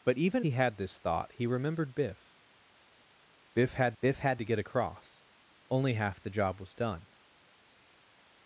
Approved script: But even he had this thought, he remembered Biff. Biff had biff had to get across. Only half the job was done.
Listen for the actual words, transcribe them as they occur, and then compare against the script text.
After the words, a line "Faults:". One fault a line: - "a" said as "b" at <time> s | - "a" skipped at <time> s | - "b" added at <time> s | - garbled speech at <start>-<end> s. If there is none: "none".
But even he had this thought, he remembered Biff. Biff had biff had to get across. Only half the job was done.
Faults:
none